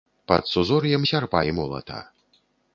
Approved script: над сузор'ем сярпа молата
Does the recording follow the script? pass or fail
fail